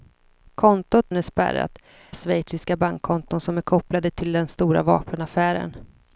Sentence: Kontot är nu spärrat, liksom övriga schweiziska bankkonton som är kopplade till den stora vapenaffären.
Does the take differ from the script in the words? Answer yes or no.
yes